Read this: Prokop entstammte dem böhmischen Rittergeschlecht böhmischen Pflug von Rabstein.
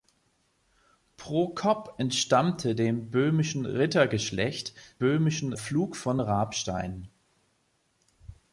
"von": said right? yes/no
yes